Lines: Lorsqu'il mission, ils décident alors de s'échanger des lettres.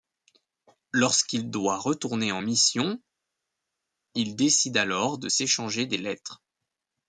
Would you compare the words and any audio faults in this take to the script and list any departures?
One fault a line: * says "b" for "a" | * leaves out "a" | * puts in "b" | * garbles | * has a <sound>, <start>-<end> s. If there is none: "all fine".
* puts in "doit retourner en"